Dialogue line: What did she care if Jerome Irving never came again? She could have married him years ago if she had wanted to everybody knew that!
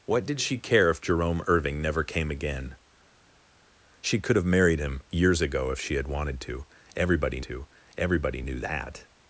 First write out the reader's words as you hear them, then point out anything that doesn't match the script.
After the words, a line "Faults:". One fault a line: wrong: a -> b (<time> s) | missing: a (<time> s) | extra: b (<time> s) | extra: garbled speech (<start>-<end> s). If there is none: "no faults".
What did she care if Jerome Irving never came again? She could have married him years ago if she had wanted to everybody to everybody knew that!
Faults:
extra: to everybody (7.4 s)